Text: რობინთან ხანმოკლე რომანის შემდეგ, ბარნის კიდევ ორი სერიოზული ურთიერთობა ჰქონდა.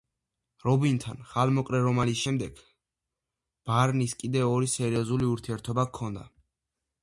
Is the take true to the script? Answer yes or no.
yes